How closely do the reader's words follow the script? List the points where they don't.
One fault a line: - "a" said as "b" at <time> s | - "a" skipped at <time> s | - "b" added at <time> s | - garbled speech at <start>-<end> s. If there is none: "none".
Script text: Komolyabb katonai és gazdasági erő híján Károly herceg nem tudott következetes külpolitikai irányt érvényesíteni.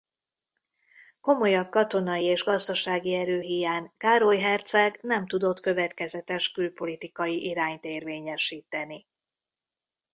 none